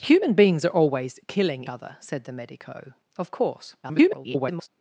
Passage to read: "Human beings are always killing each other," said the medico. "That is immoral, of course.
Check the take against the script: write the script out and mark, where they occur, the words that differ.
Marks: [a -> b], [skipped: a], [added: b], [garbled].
"Human beings are always killing [skipped: each] other," said the medico. [skipped: "That is immoral,] of course. [garbled]